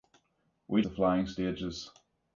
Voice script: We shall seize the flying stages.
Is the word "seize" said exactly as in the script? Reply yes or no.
no